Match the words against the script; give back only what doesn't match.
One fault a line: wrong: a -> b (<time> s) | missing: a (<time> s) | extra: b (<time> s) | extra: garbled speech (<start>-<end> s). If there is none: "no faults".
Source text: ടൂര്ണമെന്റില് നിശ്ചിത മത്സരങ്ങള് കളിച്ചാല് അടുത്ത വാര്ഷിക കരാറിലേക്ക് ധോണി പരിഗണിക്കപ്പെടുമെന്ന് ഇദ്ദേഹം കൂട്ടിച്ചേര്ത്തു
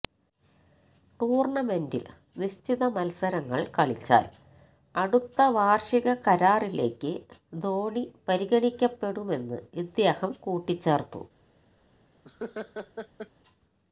no faults